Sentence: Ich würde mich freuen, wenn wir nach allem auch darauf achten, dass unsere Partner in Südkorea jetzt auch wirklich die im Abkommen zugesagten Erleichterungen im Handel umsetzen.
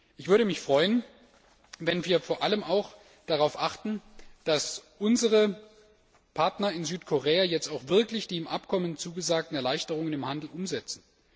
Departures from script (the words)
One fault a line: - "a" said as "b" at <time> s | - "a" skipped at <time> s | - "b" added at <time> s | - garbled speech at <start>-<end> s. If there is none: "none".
- "nach" said as "vor" at 2.2 s